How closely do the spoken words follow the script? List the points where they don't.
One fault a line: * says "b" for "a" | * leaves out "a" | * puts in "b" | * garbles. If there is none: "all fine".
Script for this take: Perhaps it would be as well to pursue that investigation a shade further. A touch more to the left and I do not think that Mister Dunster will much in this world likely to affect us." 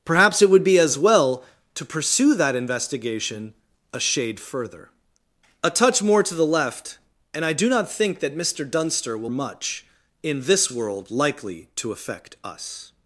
all fine